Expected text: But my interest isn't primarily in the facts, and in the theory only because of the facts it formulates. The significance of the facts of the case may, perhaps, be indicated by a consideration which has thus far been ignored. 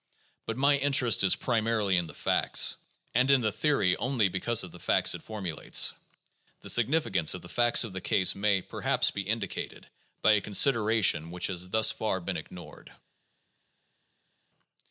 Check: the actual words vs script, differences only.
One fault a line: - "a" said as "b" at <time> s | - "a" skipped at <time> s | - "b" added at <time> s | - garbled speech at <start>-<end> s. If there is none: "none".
- "isn't" said as "is" at 1.3 s